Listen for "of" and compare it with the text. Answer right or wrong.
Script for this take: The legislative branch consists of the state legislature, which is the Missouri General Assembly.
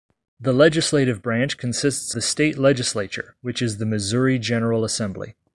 wrong